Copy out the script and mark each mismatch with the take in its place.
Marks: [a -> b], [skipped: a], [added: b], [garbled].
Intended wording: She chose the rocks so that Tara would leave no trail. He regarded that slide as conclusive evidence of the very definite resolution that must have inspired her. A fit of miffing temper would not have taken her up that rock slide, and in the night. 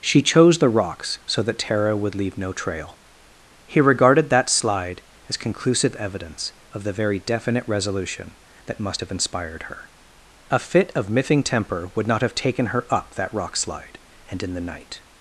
She chose the rocks so that Tara would leave no trail. He regarded that slide as conclusive evidence of the very definite resolution that must have inspired her. A fit of miffing temper would not have taken her up that rock slide, and in the night.